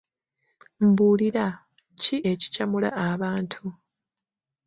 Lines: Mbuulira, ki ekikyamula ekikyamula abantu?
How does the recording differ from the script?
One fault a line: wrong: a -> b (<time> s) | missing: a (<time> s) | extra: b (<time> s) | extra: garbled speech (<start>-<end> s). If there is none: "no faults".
missing: ekikyamula (2.9 s)